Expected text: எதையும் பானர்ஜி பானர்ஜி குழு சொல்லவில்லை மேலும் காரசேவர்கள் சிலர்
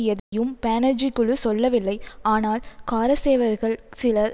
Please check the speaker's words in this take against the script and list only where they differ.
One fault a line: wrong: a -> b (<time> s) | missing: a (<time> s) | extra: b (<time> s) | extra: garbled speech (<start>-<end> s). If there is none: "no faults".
missing: பானர்ஜி (1.1 s)
wrong: மேலும் -> ஆனால் (2.3 s)